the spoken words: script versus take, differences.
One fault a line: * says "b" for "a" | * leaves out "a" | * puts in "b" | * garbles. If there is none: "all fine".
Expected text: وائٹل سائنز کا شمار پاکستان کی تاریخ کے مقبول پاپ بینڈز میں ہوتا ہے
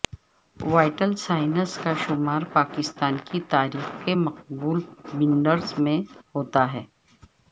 * leaves out "پاپ"